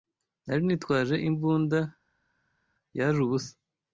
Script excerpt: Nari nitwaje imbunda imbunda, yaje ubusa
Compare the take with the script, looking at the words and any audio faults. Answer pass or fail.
fail